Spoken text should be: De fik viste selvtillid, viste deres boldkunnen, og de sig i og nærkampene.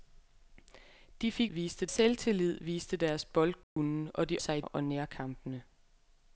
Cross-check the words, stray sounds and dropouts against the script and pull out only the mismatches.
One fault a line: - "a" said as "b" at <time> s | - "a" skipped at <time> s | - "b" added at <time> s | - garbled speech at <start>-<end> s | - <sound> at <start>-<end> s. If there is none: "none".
- dropout at 3.6-3.8 s